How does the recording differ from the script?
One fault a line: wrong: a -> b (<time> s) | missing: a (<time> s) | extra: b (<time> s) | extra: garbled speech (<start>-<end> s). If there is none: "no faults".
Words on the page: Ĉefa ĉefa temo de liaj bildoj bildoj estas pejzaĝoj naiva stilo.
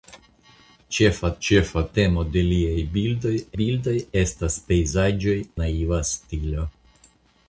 no faults